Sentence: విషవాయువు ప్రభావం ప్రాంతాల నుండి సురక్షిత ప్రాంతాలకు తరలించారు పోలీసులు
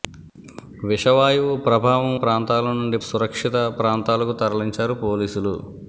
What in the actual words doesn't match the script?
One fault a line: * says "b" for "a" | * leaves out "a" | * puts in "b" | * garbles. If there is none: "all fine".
all fine